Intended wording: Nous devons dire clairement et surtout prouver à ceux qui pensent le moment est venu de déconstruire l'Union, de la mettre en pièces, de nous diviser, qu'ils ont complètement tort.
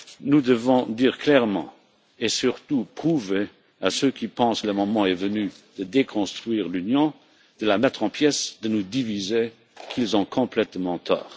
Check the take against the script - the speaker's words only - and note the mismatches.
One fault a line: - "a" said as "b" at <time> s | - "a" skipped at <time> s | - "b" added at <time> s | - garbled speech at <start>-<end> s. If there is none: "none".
none